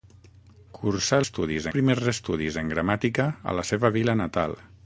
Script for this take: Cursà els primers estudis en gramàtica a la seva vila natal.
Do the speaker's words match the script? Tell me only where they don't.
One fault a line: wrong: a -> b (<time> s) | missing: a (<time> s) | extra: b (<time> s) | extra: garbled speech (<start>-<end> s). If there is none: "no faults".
wrong: els -> estudis (1.2 s)